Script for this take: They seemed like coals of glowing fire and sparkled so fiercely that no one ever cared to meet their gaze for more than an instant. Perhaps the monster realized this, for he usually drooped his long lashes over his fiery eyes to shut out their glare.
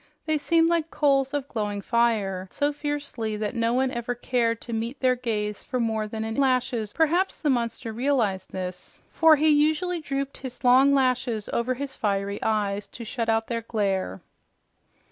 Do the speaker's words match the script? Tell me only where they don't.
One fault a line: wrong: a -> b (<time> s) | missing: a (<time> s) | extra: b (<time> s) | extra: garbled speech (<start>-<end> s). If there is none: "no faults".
missing: and sparkled (2.5 s)
wrong: instant -> lashes (6.4 s)